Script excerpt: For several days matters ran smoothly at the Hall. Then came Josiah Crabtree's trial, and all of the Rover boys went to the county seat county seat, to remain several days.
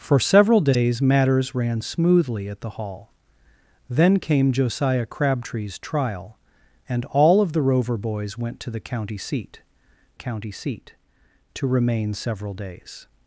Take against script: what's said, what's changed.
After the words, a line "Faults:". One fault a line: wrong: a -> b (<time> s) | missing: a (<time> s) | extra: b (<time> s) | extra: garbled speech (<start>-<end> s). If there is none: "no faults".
For several days matters ran smoothly at the Hall. Then came Josiah Crabtree's trial, and all of the Rover boys went to the county seat county seat, to remain several days.
Faults:
no faults